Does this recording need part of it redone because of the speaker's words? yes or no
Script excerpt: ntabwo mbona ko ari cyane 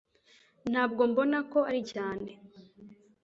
no